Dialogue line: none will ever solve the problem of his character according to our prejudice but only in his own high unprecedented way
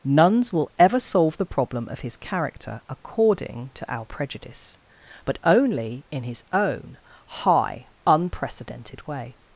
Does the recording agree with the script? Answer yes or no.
no